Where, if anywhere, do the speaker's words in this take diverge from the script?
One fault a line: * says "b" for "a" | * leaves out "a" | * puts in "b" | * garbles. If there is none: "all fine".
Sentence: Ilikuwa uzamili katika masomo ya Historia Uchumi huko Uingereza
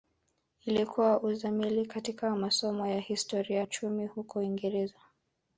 all fine